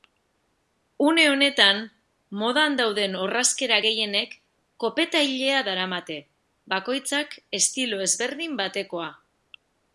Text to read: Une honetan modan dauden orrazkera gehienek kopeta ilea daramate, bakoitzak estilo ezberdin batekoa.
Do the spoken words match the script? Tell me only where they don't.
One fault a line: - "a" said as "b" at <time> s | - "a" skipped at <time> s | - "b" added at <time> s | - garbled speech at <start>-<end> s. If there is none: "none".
none